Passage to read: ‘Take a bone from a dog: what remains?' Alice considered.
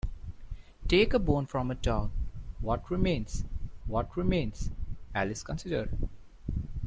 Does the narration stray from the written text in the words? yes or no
yes